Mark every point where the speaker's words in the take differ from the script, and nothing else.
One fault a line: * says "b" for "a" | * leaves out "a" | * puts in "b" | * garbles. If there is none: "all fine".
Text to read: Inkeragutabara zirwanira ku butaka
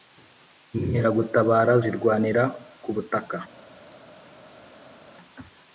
all fine